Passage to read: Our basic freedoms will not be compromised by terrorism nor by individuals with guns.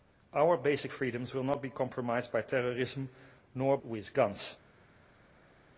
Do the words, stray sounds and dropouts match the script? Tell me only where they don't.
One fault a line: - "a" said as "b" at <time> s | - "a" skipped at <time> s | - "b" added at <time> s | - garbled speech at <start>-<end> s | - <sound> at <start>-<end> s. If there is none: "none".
- "by individuals" skipped at 3.8 s